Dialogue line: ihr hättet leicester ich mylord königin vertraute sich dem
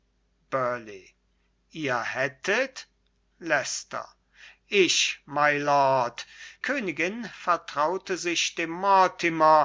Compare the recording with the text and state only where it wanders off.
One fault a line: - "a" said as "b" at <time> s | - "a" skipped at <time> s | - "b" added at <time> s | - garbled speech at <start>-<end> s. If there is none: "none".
none